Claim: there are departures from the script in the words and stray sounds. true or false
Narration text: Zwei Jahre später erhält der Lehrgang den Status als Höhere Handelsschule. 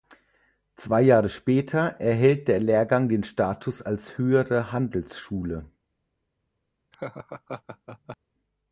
true